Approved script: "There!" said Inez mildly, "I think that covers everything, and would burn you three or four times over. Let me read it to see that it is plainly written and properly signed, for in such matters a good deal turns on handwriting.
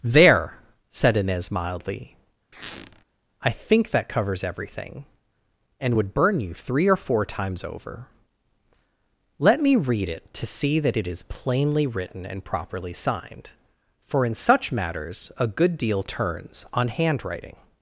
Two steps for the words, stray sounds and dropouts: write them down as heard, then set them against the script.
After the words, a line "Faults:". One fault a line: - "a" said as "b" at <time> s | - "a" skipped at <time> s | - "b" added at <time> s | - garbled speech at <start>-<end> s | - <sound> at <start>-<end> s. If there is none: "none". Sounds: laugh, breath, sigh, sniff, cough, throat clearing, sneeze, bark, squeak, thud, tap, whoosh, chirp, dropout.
"There!" said Inez mildly, "I think that covers everything, and would burn you three or four times over. Let me read it to see that it is plainly written and properly signed, for in such matters a good deal turns on handwriting.
Faults:
- squeak at 2.5-3.0 s